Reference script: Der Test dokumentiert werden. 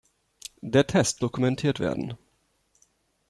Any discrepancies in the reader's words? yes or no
no